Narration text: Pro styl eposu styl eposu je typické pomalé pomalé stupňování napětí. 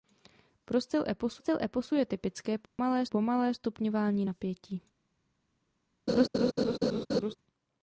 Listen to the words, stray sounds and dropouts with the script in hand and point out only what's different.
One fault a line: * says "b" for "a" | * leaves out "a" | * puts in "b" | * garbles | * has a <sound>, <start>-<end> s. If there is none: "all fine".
* has a dropout, 2.7-2.8 s
* has a laugh, 6.1-7.4 s